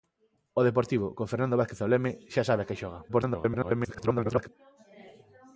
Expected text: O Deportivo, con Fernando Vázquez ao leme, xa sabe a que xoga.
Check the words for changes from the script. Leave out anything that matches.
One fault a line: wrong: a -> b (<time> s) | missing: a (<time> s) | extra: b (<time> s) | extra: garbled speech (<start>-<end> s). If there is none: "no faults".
extra: garbled speech (3.1-4.5 s)